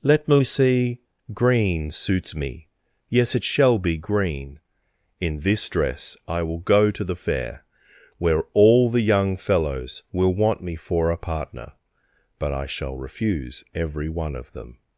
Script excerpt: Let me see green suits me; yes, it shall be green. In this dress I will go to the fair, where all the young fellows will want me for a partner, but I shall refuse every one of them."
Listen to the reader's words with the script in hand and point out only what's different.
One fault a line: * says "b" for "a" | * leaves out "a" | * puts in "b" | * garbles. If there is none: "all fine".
all fine